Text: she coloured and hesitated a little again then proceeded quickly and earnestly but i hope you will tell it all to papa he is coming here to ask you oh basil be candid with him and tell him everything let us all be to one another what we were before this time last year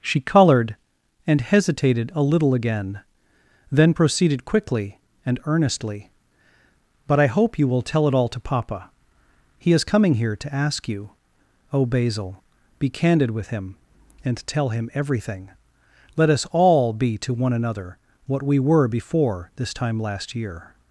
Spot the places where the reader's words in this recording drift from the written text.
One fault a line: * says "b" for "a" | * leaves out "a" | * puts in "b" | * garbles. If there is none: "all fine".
all fine